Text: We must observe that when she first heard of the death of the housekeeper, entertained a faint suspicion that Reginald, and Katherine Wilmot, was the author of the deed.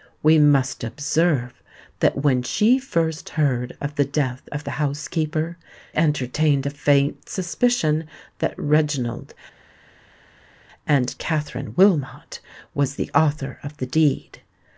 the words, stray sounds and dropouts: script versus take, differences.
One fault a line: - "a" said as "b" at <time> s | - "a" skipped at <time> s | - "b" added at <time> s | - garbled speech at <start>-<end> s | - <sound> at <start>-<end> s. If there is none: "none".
none